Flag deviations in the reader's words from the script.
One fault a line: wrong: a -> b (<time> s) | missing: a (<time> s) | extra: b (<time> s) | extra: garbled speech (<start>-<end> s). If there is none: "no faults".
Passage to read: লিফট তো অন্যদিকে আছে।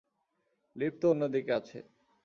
no faults